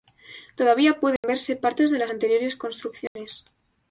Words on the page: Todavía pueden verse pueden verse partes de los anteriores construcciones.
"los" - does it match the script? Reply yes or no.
no